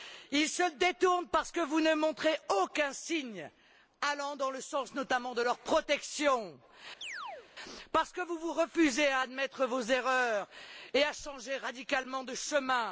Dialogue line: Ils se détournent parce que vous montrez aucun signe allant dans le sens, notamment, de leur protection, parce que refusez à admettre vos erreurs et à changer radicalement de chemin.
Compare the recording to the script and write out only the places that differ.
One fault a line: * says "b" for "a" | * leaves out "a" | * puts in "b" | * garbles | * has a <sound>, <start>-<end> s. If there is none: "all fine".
* puts in "ne"
* has a chirp, 7.0-7.5 s
* puts in "vous vous"